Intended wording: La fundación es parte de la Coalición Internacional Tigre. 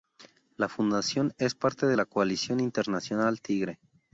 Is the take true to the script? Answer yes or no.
yes